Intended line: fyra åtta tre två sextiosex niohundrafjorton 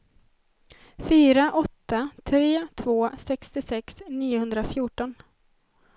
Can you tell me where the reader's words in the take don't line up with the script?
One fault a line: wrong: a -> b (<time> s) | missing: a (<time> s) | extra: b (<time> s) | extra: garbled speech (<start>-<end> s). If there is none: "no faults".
no faults